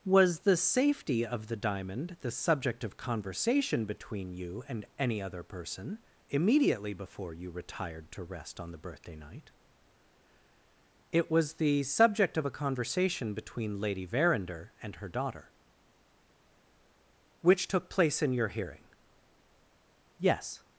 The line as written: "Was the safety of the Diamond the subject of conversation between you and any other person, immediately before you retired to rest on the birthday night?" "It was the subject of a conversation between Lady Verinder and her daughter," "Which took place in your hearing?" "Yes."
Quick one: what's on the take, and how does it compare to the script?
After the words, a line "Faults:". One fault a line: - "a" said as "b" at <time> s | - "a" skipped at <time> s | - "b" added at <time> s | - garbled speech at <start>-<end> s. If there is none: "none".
"Was the safety of the Diamond the subject of conversation between you and any other person, immediately before you retired to rest on the birthday night?" "It was the subject of a conversation between Lady Verinder and her daughter," "Which took place in your hearing?" "Yes."
Faults:
none